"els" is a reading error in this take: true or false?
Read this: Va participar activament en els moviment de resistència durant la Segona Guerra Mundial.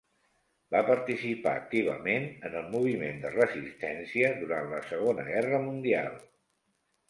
true